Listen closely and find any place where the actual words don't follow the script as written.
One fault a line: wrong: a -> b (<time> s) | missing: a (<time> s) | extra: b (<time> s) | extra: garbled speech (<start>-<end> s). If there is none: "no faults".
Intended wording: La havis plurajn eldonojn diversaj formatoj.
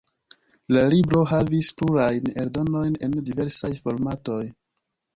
extra: libro (0.9 s)
extra: en (3.1 s)